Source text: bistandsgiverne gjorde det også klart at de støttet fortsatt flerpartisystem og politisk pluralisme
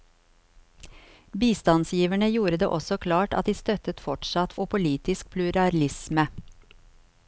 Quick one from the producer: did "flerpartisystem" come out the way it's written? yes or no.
no